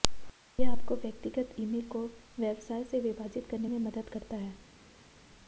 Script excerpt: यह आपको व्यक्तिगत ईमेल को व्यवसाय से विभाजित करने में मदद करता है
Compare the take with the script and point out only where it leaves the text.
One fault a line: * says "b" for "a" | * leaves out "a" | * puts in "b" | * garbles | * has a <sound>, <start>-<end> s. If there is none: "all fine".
all fine